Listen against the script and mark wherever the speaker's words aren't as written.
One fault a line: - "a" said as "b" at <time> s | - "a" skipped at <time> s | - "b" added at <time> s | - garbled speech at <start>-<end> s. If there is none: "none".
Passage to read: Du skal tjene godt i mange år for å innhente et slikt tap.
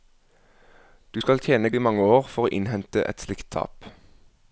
- "godt" skipped at 1.7 s